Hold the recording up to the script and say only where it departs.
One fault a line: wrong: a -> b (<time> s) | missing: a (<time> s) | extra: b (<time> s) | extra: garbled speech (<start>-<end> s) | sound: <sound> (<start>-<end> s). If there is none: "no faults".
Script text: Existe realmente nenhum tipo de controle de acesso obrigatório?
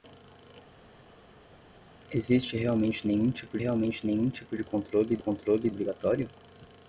extra: realmente nenhum tipo (3.6 s)
wrong: acesso -> controle (5.2 s)